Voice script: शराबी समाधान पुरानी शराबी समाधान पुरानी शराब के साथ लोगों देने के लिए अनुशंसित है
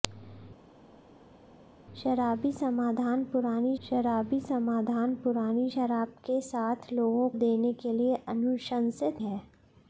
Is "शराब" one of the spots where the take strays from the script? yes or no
no